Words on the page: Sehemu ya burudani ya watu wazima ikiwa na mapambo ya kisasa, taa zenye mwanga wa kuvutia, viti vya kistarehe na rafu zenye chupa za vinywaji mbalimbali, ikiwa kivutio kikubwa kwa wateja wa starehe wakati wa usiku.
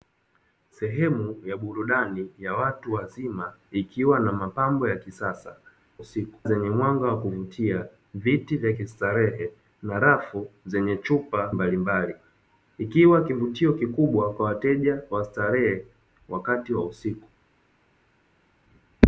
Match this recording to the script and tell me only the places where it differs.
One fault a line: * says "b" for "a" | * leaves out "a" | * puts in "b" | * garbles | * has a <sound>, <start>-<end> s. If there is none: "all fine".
* says "usiku" for "taa"
* leaves out "za vinywaji"